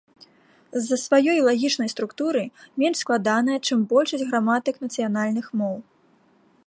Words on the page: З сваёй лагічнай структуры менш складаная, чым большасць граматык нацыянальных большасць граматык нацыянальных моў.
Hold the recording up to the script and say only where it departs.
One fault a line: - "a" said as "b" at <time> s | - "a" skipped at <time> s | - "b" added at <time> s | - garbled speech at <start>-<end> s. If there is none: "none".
- "за" added at 0.8 s
- "большасць граматык нацыянальных" skipped at 5.5 s